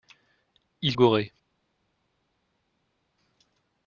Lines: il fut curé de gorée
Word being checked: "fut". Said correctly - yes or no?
no